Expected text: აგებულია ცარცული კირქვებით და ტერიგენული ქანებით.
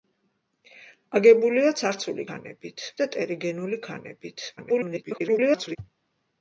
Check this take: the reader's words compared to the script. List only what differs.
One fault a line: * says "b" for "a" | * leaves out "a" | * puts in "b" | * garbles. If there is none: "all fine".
* says "ქანებით" for "კირქვებით"
* garbles